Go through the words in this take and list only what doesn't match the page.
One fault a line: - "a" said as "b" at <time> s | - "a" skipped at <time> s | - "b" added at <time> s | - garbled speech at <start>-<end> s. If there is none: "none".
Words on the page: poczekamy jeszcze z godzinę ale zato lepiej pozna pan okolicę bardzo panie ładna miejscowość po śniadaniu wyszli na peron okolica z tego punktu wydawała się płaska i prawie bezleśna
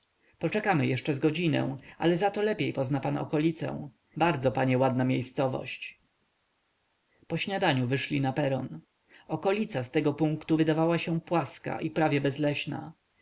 none